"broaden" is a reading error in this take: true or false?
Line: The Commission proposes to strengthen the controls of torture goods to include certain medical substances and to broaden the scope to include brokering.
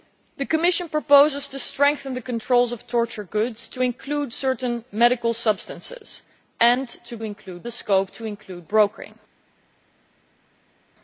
true